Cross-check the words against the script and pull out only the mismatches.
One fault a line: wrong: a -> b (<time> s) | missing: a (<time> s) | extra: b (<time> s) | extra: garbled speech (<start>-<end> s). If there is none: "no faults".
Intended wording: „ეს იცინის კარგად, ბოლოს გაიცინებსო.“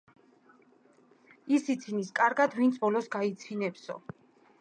wrong: ეს -> ის (1.6 s)
extra: ვინც (2.6 s)